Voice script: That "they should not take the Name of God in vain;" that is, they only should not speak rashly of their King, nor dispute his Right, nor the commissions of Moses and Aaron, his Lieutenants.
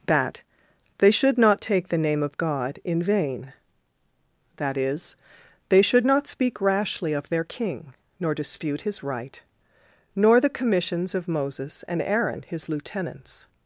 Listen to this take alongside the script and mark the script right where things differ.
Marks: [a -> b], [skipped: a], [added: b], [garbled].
That "they should not take the Name of God in vain;" that is, they [skipped: only] should not speak rashly of their King, nor dispute his Right, nor the commissions of Moses and Aaron, his Lieutenants.